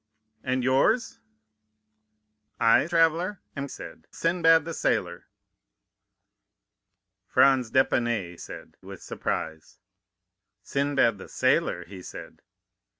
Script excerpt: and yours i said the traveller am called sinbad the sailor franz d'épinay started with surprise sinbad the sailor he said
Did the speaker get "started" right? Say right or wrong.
wrong